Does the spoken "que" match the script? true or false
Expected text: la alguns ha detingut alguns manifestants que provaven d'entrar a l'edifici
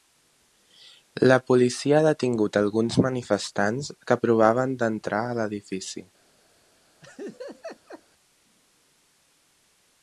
true